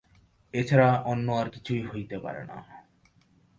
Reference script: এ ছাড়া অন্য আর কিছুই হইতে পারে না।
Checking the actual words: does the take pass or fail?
pass